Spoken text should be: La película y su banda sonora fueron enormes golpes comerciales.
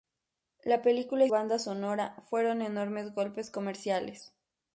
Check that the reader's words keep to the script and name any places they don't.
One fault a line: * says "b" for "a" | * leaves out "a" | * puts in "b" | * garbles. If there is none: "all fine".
* leaves out "su"